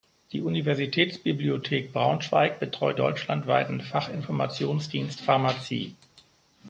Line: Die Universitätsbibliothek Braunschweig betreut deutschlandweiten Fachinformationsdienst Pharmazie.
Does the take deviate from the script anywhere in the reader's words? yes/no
no